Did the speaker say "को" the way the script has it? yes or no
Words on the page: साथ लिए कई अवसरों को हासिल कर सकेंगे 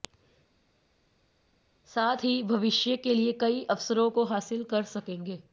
yes